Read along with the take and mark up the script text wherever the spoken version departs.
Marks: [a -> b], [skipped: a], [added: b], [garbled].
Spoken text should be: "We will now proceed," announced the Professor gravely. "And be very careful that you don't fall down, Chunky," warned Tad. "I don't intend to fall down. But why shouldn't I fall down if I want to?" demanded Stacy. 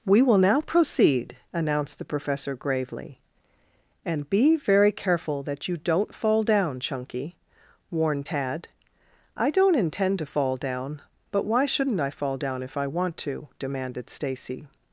"We will now proceed," announced the Professor gravely. "And be very careful that you don't fall down, Chunky," warned Tad. "I don't intend to fall down. But why shouldn't I fall down if I want to?" demanded Stacy.